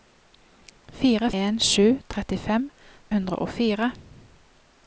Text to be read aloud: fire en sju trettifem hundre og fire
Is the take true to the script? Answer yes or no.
yes